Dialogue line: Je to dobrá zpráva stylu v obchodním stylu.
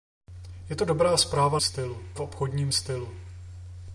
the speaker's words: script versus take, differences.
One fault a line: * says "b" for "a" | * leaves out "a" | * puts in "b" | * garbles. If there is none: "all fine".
all fine